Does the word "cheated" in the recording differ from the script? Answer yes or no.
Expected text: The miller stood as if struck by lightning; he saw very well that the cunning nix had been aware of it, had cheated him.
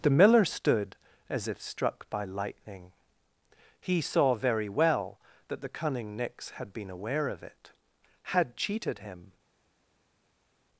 no